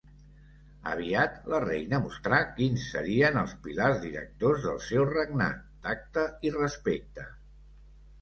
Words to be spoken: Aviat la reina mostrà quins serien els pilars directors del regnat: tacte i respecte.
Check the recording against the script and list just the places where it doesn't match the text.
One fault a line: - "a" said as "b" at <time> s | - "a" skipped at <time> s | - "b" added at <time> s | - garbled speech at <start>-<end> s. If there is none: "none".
- "seu" added at 4.9 s